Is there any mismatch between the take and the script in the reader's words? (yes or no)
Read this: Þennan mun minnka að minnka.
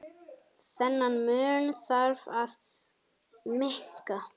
yes